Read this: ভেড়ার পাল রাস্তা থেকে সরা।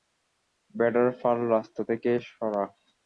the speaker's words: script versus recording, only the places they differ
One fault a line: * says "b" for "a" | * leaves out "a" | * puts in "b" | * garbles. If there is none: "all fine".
all fine